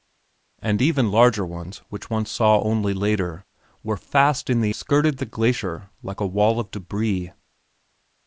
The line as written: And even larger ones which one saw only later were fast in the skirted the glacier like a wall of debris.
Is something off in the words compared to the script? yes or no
no